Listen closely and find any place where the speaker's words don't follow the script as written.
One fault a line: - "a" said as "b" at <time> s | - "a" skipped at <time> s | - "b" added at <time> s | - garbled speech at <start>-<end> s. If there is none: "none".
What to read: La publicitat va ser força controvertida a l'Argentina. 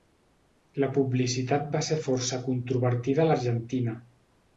none